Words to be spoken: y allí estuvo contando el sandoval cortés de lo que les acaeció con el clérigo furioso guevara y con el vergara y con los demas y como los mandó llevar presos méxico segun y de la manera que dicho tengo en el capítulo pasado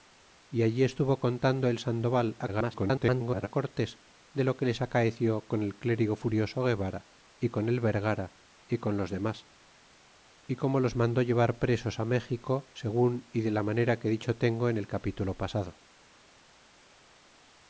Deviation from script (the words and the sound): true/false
true